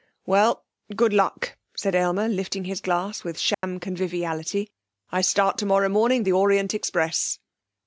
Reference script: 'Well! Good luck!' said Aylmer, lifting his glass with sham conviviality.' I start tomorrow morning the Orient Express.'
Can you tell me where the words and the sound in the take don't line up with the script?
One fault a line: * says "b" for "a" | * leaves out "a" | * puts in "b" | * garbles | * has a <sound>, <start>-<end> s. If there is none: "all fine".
* has a dropout, 3.5-3.6 s